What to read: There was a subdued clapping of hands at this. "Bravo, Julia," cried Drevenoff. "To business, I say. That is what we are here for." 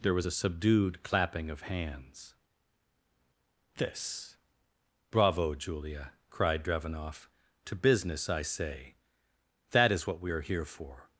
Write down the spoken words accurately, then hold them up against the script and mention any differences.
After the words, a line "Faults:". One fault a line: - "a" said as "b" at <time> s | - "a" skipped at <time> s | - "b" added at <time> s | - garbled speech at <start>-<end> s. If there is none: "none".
There was a subdued clapping of hands this. "Bravo, Julia," cried Drevenoff. "To business, I say. That is what we are here for."
Faults:
- "at" skipped at 2.4 s